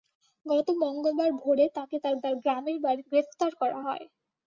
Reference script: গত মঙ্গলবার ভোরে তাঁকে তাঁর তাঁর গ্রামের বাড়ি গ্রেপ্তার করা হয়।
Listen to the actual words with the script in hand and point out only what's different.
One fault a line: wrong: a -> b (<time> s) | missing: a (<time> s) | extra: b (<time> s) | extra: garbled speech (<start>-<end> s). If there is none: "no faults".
no faults